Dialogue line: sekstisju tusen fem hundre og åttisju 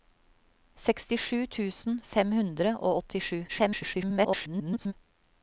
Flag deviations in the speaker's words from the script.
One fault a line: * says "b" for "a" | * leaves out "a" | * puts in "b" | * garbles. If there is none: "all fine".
* garbles